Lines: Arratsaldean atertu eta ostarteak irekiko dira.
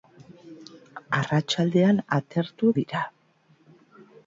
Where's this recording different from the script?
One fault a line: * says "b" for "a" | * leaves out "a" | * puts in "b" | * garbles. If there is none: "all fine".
* leaves out "eta ostarteak irekiko"